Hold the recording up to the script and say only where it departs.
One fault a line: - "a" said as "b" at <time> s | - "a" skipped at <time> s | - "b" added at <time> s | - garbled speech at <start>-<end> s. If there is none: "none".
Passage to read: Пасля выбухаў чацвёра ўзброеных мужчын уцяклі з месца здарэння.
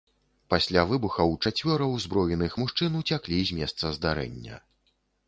none